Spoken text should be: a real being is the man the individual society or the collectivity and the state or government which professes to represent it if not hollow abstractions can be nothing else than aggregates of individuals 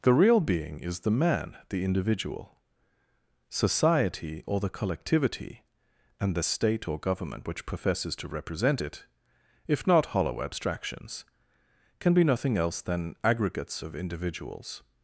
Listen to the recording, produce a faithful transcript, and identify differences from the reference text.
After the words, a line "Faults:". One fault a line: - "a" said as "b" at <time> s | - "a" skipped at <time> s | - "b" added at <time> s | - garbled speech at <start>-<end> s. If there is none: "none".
the real being is the man the individual society or the collectivity and the state or government which professes to represent it if not hollow abstractions can be nothing else than aggregates of individuals
Faults:
- "a" said as "the" at 0.0 s